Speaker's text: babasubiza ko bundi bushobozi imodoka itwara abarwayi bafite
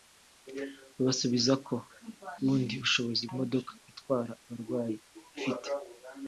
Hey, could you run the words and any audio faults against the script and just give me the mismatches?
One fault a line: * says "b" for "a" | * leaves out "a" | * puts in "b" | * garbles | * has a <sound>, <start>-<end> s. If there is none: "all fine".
all fine